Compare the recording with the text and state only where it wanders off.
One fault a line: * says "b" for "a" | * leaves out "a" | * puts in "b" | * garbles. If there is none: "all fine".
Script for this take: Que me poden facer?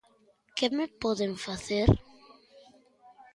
all fine